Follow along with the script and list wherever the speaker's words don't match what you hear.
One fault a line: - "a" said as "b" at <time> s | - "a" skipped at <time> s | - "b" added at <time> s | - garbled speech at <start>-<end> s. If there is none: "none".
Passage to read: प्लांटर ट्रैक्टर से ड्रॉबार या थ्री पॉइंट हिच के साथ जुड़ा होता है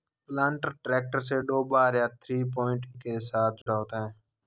- "हिच" skipped at 2.9 s